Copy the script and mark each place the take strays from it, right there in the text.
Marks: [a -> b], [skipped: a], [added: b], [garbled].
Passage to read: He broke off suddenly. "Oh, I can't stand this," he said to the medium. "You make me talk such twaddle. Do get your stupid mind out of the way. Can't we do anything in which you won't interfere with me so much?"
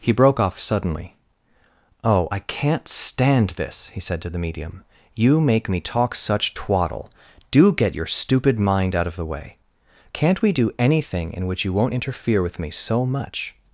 He broke off suddenly. "Oh, I can't stand this," he said to the medium. "You make me talk such twaddle. Do get your stupid mind out of the way. Can't we do anything in which you won't interfere with me so much?"